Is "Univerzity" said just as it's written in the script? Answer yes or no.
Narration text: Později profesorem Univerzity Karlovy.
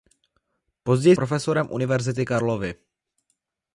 yes